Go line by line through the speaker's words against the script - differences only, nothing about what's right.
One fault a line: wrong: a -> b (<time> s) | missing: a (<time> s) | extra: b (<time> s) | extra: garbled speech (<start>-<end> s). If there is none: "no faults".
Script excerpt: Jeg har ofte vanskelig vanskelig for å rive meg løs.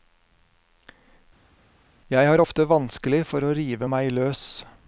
missing: vanskelig (3.2 s)